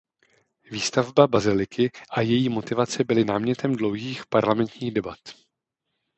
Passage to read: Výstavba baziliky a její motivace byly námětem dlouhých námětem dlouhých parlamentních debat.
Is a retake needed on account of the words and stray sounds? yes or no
yes